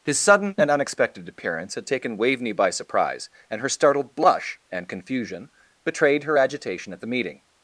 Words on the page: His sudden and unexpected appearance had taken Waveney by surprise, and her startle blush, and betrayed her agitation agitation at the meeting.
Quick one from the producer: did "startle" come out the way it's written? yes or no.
no